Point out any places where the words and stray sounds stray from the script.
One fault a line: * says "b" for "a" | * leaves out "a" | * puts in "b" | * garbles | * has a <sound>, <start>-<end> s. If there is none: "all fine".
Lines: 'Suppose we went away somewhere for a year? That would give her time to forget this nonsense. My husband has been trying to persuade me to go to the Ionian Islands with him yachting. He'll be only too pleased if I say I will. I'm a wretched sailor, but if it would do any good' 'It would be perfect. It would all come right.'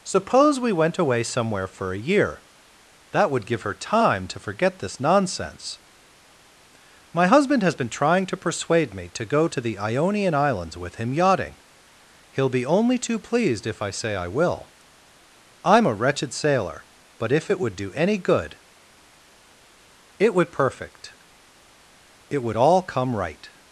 * leaves out "be"